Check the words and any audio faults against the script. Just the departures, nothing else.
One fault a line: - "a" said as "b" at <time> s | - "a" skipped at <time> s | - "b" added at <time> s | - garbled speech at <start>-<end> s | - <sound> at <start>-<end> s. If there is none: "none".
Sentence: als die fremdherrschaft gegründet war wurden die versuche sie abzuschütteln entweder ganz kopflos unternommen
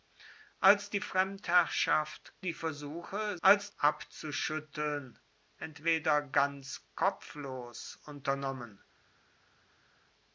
- "gegründet war wurden" skipped at 2.3 s
- "sie" said as "als" at 3.4 s